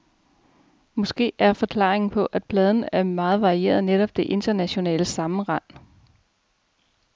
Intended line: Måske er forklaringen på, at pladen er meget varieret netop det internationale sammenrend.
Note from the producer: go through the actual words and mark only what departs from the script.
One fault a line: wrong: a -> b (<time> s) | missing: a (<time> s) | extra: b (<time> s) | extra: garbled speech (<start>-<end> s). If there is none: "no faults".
no faults